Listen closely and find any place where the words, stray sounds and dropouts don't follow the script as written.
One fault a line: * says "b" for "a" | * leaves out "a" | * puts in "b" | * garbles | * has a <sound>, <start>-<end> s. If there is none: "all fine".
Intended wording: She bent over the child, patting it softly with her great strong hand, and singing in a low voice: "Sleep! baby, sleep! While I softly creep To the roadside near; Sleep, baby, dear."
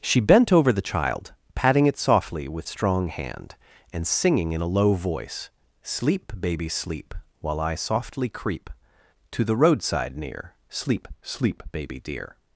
* leaves out "her great"
* puts in "Sleep"